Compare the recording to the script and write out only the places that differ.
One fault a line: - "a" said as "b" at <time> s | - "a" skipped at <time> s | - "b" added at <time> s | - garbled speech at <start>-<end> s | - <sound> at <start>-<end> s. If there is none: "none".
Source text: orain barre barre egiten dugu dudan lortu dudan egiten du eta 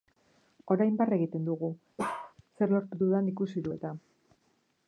- "barre" skipped at 1.2 s
- bark at 2.0-2.3 s
- "dudan" said as "zer" at 2.6 s
- "egiten" said as "ikusi" at 3.3 s